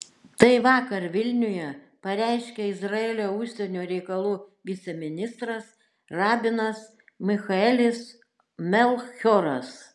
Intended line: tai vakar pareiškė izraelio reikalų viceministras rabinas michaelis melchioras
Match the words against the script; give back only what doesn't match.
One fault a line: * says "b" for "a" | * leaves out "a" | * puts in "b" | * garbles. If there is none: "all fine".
* puts in "vilniuje"
* puts in "užsienio"